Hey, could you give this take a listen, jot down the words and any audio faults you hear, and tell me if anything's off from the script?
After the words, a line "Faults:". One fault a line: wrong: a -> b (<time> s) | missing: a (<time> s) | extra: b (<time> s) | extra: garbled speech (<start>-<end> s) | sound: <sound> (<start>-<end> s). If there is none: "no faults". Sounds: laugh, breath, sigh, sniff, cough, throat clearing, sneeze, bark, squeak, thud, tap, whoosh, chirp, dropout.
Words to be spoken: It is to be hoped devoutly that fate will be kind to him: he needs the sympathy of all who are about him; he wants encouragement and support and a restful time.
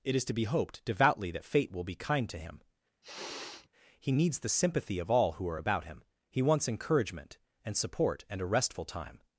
It is to be hoped devoutly that fate will be kind to him: he needs the sympathy of all who are about him; he wants encouragement and support and a restful time.
Faults:
sound: sniff (3.0-3.7 s)